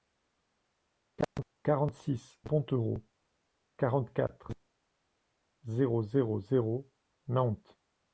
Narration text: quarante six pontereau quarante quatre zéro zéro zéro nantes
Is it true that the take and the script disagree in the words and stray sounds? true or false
false